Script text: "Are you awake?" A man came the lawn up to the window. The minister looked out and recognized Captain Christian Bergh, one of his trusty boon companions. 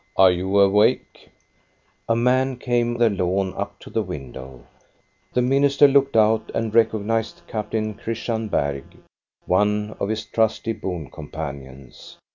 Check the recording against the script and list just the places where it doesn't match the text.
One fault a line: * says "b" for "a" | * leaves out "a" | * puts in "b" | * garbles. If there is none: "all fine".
all fine